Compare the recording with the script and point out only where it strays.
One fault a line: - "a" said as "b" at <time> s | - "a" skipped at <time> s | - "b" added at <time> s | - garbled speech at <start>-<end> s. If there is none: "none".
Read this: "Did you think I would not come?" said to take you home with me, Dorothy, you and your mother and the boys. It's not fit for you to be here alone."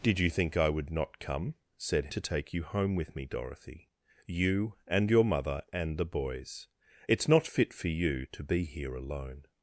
none